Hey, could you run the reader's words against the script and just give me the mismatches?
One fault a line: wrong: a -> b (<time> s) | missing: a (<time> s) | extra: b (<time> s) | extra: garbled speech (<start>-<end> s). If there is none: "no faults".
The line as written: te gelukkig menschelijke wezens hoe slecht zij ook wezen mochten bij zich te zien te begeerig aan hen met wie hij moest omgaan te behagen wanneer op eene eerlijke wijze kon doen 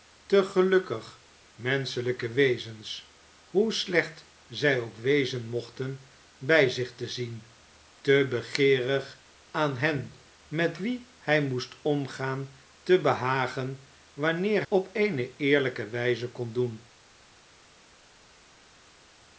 no faults